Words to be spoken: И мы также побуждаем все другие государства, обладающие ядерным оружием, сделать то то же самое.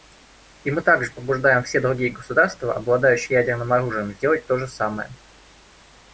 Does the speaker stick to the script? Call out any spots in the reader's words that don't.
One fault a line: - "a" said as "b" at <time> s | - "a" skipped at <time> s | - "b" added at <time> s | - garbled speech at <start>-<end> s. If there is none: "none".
- "то" skipped at 4.6 s